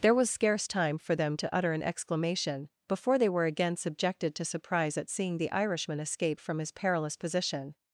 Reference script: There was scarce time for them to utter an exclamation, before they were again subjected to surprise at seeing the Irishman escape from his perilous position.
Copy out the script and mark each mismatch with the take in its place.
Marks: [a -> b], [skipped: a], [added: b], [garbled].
There was scarce time for them to utter an exclamation, before they were again subjected to surprise at seeing the Irishman escape from his perilous position.